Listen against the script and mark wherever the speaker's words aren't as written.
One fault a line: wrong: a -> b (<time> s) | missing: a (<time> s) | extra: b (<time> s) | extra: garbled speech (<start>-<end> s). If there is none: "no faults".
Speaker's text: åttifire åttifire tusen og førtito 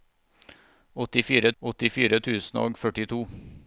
no faults